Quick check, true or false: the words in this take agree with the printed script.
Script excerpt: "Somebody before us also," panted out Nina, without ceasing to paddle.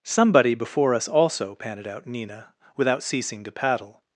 true